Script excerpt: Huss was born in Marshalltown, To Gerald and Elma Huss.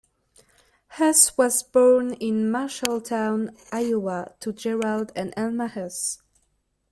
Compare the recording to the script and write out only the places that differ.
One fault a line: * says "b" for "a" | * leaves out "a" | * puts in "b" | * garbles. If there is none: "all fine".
* puts in "Iowa"